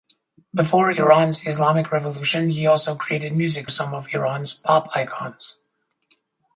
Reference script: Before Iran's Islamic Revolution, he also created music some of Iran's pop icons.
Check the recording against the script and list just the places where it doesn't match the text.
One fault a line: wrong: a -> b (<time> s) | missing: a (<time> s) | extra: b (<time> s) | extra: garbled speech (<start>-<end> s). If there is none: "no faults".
no faults